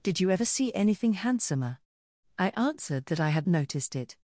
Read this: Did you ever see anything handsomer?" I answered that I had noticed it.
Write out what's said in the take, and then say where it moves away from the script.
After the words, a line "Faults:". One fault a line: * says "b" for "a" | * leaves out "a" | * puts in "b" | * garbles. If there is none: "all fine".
Did you ever see anything handsomer?" I answered that I had noticed it.
Faults:
all fine